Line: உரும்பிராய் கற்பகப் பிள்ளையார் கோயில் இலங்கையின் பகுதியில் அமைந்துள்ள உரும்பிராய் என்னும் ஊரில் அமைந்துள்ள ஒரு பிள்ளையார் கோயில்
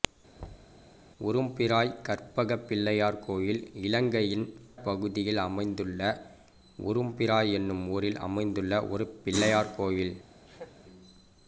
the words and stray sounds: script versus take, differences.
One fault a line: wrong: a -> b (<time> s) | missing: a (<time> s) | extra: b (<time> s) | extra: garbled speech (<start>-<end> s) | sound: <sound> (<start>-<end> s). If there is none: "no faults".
sound: thud (0.4-0.8 s)
sound: laugh (10.5-10.8 s)